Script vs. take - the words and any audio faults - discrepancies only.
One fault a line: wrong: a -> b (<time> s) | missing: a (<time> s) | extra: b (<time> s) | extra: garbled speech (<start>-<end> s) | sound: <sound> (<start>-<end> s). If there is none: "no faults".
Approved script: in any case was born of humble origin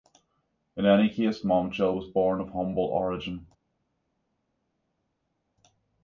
extra: momchil (1.4 s)